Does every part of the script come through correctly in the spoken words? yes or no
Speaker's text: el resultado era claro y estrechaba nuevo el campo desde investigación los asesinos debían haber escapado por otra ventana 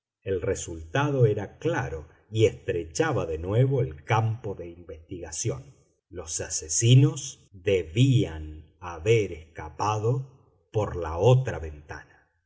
no